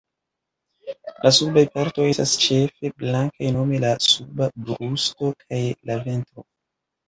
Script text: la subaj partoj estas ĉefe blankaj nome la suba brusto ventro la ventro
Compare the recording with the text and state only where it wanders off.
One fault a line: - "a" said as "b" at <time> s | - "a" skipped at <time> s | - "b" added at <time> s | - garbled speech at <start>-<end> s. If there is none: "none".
- "ventro" said as "kaj" at 5.4 s